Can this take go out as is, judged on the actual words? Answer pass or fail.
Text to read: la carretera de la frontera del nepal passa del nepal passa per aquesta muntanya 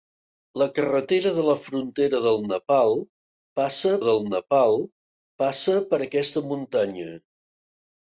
pass